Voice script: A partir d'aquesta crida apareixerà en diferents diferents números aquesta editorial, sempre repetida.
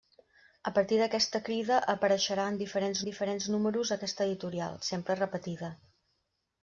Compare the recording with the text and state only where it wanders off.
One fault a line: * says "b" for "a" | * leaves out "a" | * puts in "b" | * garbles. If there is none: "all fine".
all fine